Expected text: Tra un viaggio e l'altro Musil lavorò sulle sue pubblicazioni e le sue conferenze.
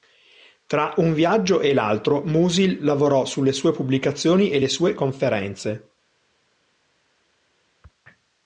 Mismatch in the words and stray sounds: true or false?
false